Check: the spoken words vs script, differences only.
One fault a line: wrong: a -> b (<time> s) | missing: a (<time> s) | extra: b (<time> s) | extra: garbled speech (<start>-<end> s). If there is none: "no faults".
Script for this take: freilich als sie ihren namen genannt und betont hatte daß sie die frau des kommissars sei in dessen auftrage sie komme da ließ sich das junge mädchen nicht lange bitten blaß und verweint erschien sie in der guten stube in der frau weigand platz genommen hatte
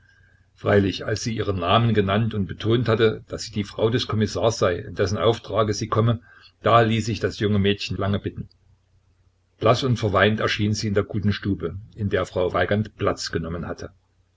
missing: nicht (8.0 s)